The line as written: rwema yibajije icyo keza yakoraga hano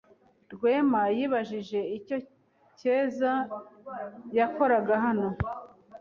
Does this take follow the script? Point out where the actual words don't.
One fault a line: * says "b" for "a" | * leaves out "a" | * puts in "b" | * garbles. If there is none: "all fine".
all fine